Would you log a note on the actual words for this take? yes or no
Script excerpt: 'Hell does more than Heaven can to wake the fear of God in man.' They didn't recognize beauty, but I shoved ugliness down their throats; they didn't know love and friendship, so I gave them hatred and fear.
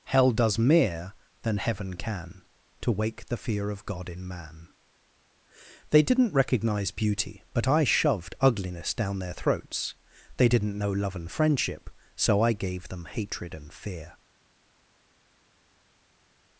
yes